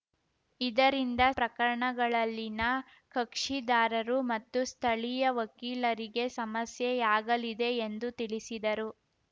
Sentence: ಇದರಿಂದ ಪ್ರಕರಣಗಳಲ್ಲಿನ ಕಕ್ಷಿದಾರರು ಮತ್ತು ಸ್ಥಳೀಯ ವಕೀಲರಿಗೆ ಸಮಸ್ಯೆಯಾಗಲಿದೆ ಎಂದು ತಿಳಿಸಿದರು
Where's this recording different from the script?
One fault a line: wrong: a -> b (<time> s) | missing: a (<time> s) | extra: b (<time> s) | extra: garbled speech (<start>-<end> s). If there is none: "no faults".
no faults